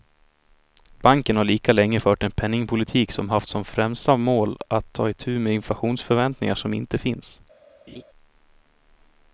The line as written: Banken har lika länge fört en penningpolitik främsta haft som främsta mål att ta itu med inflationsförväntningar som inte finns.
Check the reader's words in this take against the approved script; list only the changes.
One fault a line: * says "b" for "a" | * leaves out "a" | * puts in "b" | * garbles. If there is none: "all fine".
* says "som" for "främsta"